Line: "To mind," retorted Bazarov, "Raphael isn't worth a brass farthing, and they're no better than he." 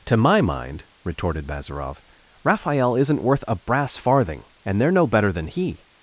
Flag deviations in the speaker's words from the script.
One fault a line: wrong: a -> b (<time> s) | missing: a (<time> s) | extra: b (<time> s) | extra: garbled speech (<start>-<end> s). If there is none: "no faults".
extra: my (0.2 s)